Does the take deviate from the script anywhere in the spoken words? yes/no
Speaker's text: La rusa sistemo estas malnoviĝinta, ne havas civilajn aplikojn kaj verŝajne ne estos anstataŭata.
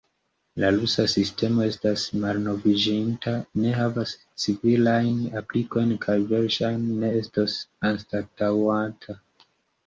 no